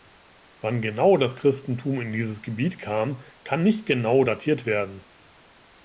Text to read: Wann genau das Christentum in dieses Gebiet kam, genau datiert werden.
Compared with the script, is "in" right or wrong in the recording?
right